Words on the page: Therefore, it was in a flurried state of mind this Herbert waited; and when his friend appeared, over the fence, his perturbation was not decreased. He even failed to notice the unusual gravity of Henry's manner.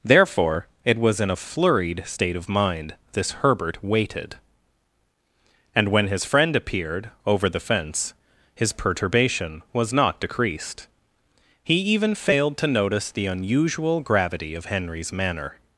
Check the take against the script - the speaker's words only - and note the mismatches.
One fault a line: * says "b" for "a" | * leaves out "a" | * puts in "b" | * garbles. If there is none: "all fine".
all fine